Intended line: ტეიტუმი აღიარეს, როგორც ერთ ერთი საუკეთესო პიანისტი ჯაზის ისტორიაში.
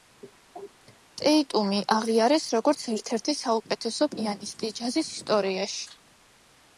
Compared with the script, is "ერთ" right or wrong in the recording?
right